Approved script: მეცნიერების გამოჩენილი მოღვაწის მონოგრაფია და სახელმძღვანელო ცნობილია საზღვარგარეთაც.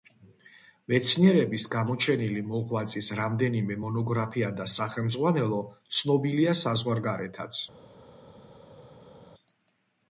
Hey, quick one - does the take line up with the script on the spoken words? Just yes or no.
no